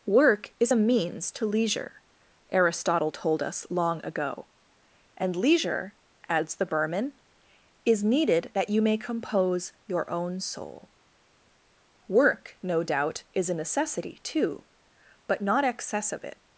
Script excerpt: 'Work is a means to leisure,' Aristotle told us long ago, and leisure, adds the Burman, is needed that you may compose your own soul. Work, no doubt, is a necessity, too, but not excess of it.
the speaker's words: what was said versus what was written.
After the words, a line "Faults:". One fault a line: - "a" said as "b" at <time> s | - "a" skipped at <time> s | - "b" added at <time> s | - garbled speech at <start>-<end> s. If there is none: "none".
'Work is a means to leisure,' Aristotle told us long ago, and leisure, adds the Burman, is needed that you may compose your own soul. Work, no doubt, is a necessity, too, but not excess of it.
Faults:
none